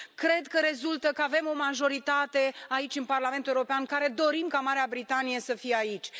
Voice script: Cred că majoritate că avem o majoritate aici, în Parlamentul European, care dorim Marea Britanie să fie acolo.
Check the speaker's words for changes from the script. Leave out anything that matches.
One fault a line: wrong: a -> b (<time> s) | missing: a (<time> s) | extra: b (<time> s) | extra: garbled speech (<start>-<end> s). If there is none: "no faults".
wrong: majoritate -> rezultă (0.6 s)
extra: ca (4.5 s)
wrong: acolo -> aici (5.7 s)